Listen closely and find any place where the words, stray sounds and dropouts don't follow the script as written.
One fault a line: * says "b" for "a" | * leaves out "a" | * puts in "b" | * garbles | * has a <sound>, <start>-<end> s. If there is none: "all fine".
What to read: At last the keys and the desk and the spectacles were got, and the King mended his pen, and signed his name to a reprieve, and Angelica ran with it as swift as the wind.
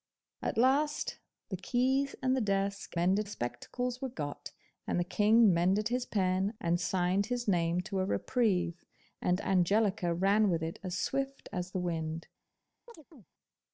* says "mended" for "and"
* has a chirp, 12.9-13.3 s